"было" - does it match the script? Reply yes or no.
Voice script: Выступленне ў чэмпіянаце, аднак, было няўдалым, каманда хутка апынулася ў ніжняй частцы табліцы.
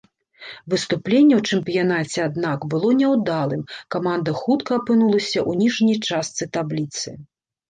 yes